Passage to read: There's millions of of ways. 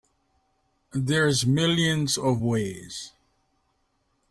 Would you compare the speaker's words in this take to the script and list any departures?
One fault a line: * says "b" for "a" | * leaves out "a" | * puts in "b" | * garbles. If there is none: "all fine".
* leaves out "of"